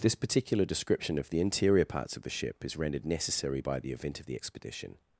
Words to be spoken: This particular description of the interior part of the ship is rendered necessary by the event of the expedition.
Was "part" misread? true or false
true